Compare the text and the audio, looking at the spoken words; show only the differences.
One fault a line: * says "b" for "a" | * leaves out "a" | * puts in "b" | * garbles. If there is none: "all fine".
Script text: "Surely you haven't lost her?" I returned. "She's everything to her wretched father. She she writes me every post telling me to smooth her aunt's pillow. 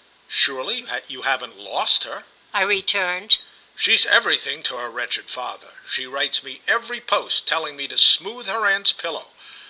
* leaves out "she"